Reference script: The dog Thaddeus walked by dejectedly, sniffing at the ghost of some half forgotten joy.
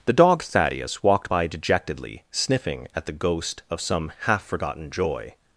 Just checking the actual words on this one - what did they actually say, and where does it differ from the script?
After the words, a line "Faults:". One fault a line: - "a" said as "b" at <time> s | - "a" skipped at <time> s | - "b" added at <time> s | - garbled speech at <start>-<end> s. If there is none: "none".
The dog Thaddeus walked by dejectedly, sniffing at the ghost of some half forgotten joy.
Faults:
none